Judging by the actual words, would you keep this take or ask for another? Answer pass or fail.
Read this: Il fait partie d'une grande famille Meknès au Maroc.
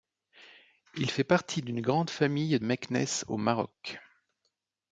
pass